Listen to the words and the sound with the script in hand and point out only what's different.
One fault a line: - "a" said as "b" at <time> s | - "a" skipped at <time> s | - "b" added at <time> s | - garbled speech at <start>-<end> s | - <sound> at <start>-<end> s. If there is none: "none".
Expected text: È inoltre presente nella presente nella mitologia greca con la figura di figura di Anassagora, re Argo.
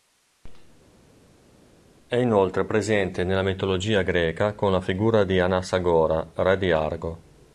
- "presente nella" skipped at 3.4 s
- "figura di" skipped at 5.4 s
- "di" added at 6.6 s